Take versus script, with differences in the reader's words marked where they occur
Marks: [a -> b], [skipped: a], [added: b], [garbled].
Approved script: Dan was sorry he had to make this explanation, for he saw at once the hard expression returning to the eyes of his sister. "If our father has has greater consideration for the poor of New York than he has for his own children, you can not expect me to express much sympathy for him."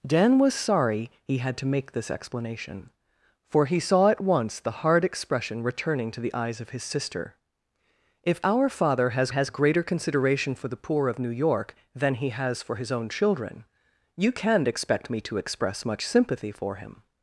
Dan was sorry he had to make this explanation, for he saw at once the hard expression returning to the eyes of his sister. "If our father has has greater consideration for the poor of New York than he has for his own children, you can not expect me to express much sympathy for him."